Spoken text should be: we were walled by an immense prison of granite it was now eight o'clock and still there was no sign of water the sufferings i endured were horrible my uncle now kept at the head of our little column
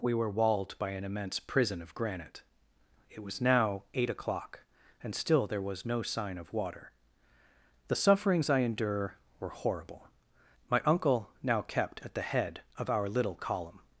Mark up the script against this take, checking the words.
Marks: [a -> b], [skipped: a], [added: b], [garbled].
we were walled by an immense prison of granite it was now eight o'clock and still there was no sign of water the sufferings i [endured -> endure] were horrible my uncle now kept at the head of our little column